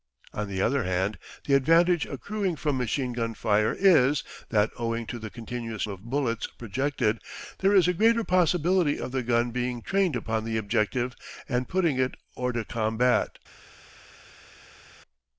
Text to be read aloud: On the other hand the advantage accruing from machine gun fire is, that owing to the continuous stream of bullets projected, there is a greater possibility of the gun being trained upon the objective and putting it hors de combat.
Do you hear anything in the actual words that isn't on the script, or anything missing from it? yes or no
yes